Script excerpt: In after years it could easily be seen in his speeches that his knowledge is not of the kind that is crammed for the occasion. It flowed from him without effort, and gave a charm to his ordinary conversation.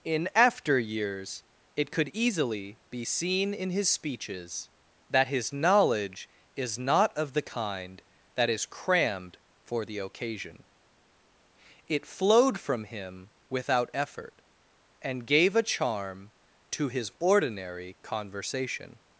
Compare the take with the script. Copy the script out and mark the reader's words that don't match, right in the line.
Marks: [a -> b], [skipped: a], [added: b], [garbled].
In after years it could easily be seen in his speeches that his knowledge is not of the kind that is crammed for the occasion. It flowed from him without effort, and gave a charm to his ordinary conversation.